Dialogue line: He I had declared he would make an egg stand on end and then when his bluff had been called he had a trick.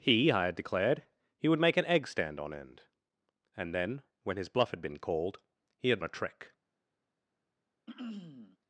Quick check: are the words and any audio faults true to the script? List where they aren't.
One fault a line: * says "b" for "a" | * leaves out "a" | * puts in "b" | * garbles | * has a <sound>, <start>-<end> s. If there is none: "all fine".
* has a throat clearing, 7.9-8.6 s